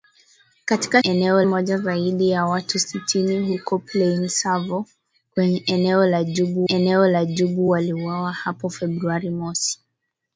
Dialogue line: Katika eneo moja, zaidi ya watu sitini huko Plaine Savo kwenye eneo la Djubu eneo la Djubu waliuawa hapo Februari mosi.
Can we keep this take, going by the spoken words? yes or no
yes